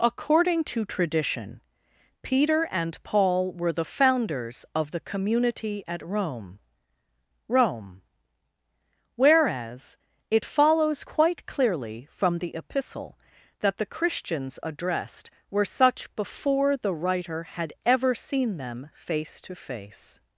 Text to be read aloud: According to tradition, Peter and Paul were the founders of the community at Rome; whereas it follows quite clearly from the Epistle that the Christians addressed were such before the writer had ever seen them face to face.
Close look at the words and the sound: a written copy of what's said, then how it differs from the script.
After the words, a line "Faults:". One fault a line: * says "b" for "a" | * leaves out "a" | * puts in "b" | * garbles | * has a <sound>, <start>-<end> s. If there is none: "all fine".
According to tradition, Peter and Paul were the founders of the community at Rome Rome; whereas it follows quite clearly from the Epistle that the Christians addressed were such before the writer had ever seen them face to face.
Faults:
* puts in "Rome"